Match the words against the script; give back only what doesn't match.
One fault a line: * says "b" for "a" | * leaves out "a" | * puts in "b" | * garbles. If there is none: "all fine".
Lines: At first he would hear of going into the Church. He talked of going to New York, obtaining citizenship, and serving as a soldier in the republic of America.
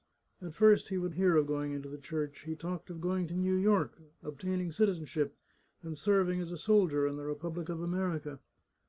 all fine